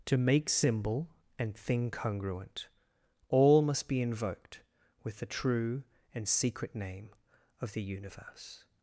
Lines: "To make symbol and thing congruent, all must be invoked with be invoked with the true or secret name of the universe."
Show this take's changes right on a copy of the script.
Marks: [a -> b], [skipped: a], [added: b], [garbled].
"To make symbol and thing congruent, all must be invoked with [skipped: be invoked with] the true [or -> and] secret name of the universe."